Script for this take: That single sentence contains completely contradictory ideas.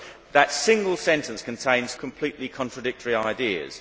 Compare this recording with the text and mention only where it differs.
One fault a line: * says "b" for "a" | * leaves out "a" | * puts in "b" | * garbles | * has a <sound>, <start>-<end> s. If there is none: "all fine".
all fine